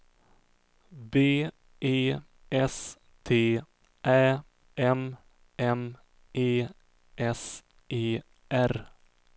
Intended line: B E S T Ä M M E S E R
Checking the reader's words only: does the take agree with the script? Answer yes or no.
yes